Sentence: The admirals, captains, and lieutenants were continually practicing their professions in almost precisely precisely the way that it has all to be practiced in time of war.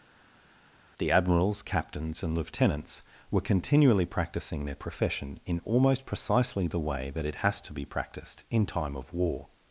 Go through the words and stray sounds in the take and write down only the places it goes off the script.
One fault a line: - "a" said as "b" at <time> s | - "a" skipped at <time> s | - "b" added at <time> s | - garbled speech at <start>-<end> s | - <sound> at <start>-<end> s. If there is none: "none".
- "professions" said as "profession" at 4.8 s
- "precisely" skipped at 6.7 s
- "all" skipped at 7.6 s